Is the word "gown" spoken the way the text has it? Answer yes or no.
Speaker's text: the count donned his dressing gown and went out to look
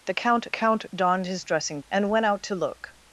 no